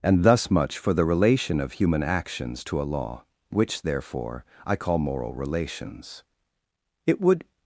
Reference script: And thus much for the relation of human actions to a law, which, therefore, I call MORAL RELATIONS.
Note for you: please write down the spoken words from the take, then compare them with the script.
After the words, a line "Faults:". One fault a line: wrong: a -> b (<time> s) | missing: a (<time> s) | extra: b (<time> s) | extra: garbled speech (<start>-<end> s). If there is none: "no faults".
And thus much for the relation of human actions to a law, which, therefore, I call MORAL RELATIONS. It would
Faults:
extra: It would (7.0 s)